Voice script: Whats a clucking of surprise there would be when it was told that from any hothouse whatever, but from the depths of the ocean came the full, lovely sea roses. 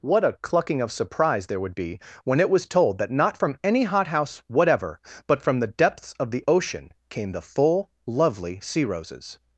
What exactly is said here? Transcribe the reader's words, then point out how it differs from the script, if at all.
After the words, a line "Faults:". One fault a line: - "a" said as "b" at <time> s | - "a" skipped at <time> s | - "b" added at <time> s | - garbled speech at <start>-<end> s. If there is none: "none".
What a clucking of surprise there would be when it was told that not from any hothouse whatever, but from the depths of the ocean came the full, lovely sea roses.
Faults:
- "Whats" said as "What" at 0.0 s
- "not" added at 3.1 s